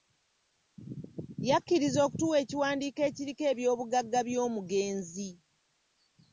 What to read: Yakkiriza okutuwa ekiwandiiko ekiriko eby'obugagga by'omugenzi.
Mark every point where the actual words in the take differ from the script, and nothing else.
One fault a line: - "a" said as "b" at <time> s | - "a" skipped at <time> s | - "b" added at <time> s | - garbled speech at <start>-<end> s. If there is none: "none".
none